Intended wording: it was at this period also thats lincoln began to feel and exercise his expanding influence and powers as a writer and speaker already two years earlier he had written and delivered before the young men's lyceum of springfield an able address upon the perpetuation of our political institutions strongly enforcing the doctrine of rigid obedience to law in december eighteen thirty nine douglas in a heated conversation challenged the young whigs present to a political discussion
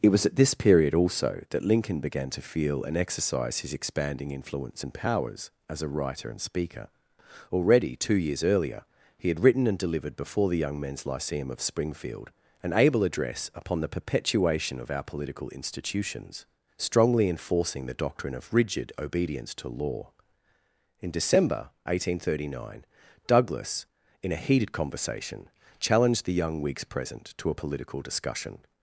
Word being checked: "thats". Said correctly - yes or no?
no